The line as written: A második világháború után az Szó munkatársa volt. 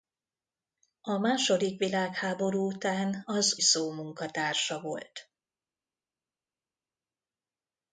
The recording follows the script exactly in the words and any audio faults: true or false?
true